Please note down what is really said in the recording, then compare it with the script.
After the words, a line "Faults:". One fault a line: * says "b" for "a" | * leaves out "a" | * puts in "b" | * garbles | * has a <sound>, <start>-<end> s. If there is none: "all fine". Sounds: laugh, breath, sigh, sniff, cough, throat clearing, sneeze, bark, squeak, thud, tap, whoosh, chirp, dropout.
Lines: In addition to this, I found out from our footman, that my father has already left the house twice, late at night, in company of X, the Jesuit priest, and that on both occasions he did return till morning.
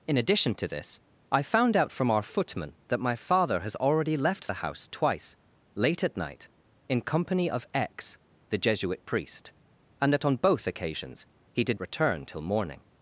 In addition to this, I found out from our footman, that my father has already left the house twice, late at night, in company of X, the Jesuit priest, and that on both occasions he did return till morning.
Faults:
all fine